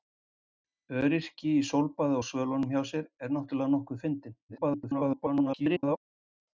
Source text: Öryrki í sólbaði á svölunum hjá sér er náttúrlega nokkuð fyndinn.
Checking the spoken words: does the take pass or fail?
fail